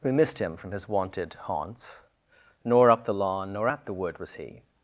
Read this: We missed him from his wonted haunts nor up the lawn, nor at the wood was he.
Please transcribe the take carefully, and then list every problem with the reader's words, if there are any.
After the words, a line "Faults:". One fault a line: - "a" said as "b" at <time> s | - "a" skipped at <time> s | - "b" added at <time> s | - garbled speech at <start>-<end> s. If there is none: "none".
We missed him from his wonted haunts nor up the lawn, nor at the wood was he.
Faults:
none